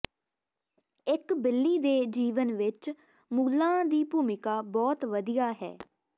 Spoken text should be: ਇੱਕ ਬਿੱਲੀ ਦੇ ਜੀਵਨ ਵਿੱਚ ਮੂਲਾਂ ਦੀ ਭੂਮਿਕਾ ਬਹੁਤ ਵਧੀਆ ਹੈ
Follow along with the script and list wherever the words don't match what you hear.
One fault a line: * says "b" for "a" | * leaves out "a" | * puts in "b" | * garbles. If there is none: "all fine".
all fine